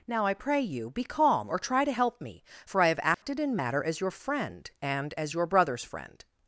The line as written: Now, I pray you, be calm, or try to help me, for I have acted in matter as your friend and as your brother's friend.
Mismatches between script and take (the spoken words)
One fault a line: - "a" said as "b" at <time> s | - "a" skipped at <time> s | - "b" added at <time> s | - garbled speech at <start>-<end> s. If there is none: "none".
none